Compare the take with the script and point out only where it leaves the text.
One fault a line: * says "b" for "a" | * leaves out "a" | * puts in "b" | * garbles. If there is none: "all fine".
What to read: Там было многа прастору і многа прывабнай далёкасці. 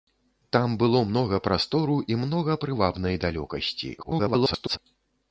* garbles